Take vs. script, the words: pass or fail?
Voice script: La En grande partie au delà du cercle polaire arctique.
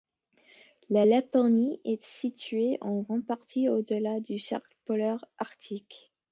fail